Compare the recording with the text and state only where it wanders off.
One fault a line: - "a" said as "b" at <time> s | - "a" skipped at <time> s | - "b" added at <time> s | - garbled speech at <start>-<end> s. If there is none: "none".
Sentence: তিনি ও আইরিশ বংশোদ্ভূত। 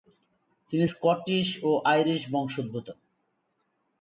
- "স্কটিশ" added at 0.8 s